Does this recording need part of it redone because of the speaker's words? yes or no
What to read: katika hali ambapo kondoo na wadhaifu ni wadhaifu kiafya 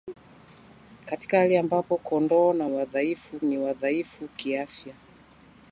no